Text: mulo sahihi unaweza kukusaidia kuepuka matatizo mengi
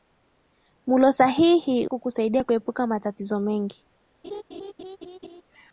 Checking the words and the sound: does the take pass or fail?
fail